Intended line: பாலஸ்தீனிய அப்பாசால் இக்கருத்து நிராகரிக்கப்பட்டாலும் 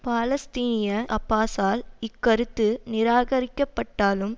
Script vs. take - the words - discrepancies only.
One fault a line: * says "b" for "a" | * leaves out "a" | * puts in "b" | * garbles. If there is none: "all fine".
all fine